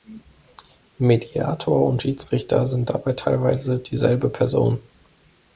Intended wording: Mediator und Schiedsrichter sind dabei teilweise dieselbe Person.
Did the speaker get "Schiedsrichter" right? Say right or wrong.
right